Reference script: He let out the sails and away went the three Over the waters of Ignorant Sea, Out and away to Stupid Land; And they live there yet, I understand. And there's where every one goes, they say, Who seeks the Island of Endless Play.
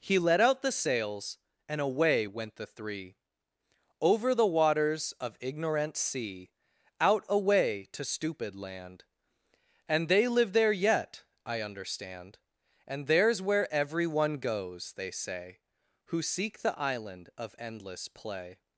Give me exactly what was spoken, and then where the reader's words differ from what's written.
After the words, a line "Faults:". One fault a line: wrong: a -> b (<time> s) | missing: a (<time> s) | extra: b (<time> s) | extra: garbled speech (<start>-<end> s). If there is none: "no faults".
He let out the sails and away went the three Over the waters of Ignorant Sea, Out away to Stupid Land; And they live there yet, I understand. And there's where every one goes, they say, Who seek the Island of Endless Play.
Faults:
missing: and (7.2 s)
wrong: seeks -> seek (16.2 s)